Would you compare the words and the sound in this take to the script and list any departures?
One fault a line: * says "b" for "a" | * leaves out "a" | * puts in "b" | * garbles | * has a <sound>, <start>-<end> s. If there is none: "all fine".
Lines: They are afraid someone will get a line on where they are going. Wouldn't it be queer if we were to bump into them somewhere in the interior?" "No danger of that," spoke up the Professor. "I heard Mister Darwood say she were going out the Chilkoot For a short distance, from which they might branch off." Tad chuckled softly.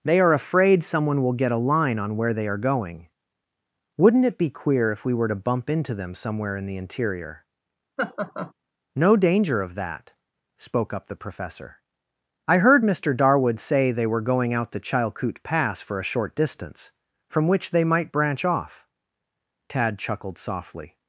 * has a laugh, 8.0-8.5 s
* says "they" for "she"
* puts in "Pass"